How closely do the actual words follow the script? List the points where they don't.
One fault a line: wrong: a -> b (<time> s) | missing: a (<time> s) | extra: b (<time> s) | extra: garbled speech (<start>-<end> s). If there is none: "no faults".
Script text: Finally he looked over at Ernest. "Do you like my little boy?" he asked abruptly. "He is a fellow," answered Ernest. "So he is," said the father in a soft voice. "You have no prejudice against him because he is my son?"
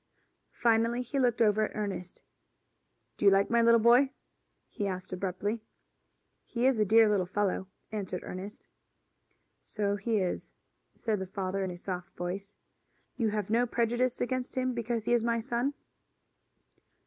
extra: dear little (6.8 s)